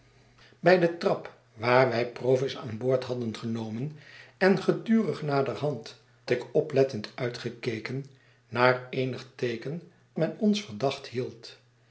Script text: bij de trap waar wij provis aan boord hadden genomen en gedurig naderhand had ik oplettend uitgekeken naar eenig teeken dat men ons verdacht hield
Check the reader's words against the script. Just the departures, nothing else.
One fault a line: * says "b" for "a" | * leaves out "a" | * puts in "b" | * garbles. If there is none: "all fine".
* leaves out "had"
* leaves out "dat"